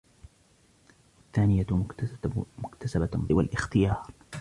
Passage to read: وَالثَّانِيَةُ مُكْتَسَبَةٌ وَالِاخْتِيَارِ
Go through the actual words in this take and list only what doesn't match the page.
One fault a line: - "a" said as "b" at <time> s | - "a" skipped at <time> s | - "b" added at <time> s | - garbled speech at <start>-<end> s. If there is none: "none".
none